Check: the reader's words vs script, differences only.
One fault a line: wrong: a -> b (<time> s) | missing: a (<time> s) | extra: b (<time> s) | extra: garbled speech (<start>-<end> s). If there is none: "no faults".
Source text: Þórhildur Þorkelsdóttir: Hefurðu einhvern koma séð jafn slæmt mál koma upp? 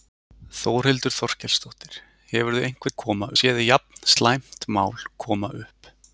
no faults